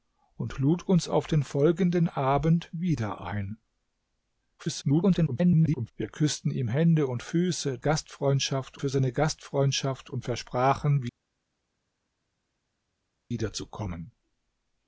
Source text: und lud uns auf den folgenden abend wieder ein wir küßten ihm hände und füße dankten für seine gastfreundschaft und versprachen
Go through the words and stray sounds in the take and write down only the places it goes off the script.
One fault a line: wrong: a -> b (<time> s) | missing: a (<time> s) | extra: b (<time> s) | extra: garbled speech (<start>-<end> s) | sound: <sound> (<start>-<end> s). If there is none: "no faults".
extra: garbled speech (4.6-5.9 s)
wrong: dankten -> gastfreundschaft (7.8 s)